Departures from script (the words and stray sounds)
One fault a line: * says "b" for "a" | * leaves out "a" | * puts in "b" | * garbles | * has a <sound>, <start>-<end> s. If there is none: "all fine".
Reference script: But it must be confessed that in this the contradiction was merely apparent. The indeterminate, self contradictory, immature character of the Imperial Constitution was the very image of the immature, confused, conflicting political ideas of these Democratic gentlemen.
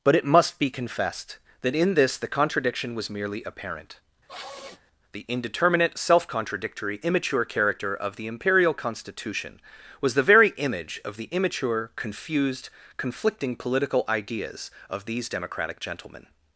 * has a sniff, 4.3-4.8 s